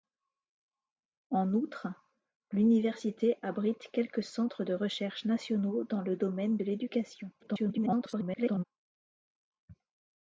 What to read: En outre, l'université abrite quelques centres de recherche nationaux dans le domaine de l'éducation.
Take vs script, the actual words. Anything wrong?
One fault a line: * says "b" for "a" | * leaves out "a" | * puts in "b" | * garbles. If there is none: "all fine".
* garbles